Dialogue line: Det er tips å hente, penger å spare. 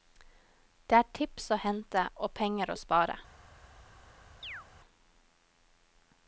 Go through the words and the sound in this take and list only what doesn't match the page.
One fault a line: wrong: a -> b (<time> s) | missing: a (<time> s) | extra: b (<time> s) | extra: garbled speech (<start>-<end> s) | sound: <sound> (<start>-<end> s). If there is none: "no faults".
extra: og (2.2 s)
sound: chirp (4.4-4.7 s)